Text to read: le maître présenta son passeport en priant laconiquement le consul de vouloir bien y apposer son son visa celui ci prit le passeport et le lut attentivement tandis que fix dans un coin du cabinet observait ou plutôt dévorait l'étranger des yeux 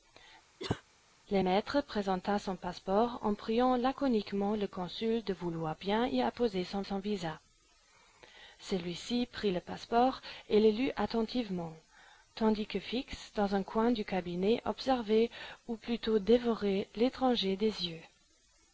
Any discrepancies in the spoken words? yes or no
no